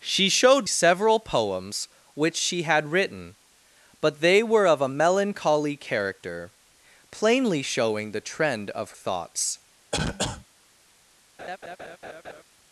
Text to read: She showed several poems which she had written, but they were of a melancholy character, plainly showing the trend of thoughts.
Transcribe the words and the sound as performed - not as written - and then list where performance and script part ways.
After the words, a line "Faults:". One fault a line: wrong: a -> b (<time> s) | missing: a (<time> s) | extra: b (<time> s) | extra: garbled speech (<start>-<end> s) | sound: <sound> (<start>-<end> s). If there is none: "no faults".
She showed several poems which she had written, but they were of a melancholy character, plainly showing the trend of thoughts.
Faults:
sound: cough (9.9-10.5 s)
sound: laugh (11.4-12.4 s)